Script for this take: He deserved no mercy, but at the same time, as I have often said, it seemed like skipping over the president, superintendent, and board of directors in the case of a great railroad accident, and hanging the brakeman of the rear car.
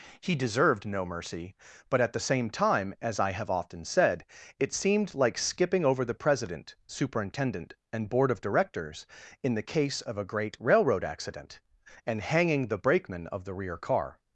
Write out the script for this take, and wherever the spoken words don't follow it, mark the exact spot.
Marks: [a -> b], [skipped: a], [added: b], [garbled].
He deserved no mercy, but at the same time, as I have often said, it seemed like skipping over the president, superintendent, and board of directors in the case of a great railroad accident, and hanging the brakeman of the rear car.